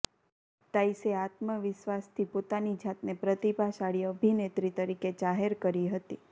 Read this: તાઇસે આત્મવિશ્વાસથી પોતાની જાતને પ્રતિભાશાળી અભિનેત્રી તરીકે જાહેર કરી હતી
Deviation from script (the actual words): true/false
false